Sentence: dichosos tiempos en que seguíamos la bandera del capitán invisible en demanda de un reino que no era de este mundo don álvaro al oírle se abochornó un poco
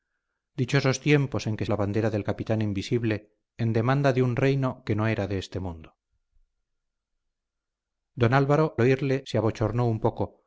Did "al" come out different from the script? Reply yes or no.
yes